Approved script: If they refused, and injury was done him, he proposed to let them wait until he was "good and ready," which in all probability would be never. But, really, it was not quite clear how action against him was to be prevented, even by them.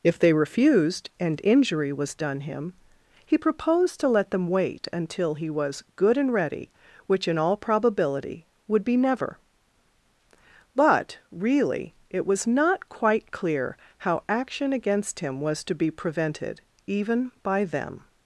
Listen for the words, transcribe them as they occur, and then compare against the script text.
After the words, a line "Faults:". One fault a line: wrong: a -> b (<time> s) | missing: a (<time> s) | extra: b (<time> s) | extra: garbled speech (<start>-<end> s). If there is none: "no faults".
If they refused, and injury was done him, he proposed to let them wait until he was "good and ready," which in all probability would be never. But, really, it was not quite clear how action against him was to be prevented, even by them.
Faults:
no faults